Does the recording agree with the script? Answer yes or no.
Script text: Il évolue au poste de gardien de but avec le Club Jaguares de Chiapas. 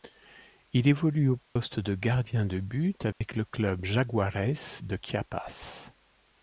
yes